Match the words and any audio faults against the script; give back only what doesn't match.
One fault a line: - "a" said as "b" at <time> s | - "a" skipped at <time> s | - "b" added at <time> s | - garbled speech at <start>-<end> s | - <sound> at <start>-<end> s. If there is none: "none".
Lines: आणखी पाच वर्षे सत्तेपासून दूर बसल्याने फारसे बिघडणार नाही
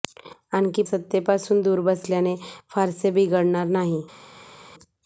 - "पाच वर्षे" skipped at 0.8 s